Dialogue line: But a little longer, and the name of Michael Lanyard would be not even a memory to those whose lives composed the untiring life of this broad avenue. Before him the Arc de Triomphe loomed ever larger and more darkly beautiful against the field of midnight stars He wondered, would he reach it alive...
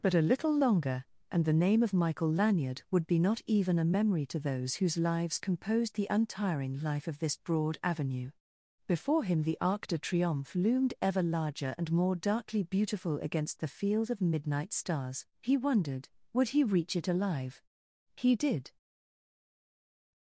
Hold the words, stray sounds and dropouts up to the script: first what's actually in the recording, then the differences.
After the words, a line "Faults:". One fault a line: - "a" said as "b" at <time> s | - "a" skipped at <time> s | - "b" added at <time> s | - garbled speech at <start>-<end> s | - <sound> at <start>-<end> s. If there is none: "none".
But a little longer, and the name of Michael Lanyard would be not even a memory to those whose lives composed the untiring life of this broad avenue. Before him the Arc de Triomphe loomed ever larger and more darkly beautiful against the field of midnight stars He wondered, would he reach it alive... He did
Faults:
- "He did" added at 18.1 s